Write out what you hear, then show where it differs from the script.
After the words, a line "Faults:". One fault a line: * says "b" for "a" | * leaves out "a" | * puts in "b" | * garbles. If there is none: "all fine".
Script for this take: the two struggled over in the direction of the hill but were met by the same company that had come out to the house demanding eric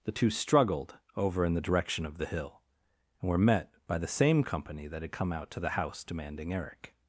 the two struggled over in the direction of the hill and were met by the same company that had come out to the house demanding eric
Faults:
* says "and" for "but"